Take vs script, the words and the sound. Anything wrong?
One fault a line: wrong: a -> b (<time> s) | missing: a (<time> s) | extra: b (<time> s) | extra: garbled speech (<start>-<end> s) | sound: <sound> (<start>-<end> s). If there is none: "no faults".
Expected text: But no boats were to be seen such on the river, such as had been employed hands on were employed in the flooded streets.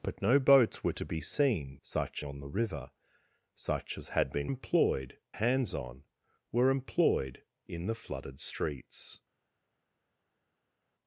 no faults